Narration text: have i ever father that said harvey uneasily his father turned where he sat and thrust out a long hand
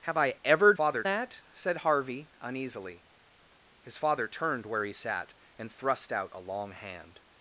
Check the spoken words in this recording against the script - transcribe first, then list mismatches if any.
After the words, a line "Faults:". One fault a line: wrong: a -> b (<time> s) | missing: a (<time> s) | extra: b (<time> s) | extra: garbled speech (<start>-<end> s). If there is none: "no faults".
have i ever father that said harvey uneasily his father turned where he sat and thrust out a long hand
Faults:
no faults